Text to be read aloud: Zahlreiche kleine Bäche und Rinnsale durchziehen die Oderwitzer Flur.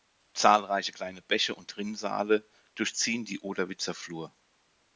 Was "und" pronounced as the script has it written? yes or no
yes